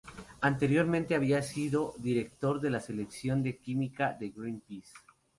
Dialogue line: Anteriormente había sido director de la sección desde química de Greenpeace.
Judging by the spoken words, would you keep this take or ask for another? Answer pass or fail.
fail